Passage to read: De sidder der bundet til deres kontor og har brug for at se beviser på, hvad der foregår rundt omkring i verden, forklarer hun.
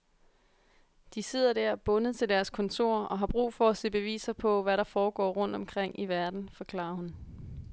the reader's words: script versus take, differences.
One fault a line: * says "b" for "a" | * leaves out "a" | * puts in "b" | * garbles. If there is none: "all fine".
all fine